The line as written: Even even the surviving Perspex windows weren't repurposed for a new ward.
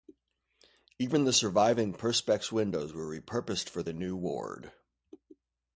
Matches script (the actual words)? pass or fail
fail